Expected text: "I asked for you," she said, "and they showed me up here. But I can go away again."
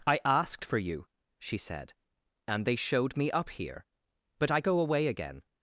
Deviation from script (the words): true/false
true